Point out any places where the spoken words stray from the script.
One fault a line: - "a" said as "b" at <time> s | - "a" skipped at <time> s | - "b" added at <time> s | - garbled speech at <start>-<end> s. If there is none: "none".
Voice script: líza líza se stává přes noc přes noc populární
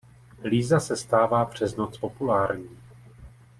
- "líza" skipped at 0.8 s
- "přes noc" skipped at 2.0 s